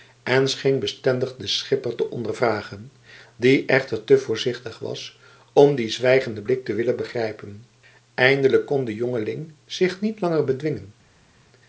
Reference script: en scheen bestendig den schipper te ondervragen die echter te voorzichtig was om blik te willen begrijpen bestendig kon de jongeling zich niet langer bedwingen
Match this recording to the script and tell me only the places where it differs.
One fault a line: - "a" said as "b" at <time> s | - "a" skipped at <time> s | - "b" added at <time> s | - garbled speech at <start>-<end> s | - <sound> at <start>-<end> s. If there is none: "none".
- "dien zwijgenden" added at 5.8 s
- "bestendig" said as "eindelijk" at 8.1 s